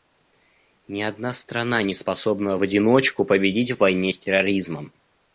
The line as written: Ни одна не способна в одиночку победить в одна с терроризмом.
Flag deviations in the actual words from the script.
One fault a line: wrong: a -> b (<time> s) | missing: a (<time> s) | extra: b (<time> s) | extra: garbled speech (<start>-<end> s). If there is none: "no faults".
extra: страна (1.3 s)
wrong: одна -> войне (3.8 s)